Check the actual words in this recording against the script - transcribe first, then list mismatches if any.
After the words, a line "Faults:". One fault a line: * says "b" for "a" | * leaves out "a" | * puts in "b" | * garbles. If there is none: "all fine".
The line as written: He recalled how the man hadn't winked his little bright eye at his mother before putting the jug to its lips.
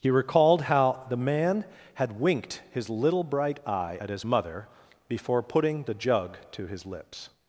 He recalled how the man had winked his little bright eye at his mother before putting the jug to his lips.
Faults:
* says "had" for "hadn't"
* says "his" for "its"